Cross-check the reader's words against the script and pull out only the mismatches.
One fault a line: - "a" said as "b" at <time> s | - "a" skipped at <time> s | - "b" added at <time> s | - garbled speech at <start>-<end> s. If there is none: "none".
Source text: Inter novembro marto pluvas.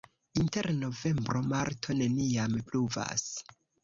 - "neniam" added at 2.0 s